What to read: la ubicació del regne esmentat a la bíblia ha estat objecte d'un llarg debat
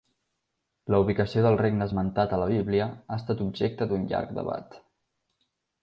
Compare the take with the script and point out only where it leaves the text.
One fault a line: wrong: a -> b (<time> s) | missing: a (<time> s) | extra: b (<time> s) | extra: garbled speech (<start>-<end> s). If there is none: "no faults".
no faults